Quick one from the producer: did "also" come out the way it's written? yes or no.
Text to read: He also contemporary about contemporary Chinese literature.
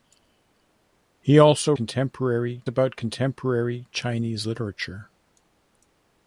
yes